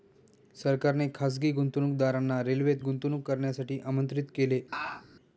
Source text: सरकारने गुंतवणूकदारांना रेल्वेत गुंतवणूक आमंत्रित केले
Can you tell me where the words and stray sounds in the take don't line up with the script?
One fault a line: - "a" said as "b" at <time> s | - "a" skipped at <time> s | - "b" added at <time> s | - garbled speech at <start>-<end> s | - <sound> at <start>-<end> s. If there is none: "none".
- "खासगी" added at 1.1 s
- "करण्यासाठी" added at 3.3 s
- laugh at 4.7-5.1 s